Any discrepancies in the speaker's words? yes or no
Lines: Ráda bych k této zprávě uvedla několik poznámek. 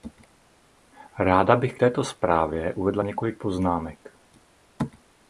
no